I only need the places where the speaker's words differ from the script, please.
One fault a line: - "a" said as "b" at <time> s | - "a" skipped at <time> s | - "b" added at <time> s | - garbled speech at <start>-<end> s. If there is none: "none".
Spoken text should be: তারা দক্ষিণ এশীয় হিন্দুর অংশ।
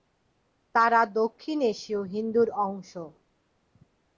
none